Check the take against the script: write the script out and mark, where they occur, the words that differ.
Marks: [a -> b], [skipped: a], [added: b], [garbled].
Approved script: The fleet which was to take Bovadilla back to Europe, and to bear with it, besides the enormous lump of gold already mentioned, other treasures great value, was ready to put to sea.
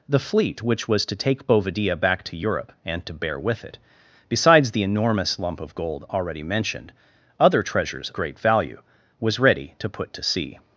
The fleet which was to take Bovadilla back to Europe, and to bear with it, besides the enormous lump of gold already mentioned, other treasures great value, was ready to put to sea.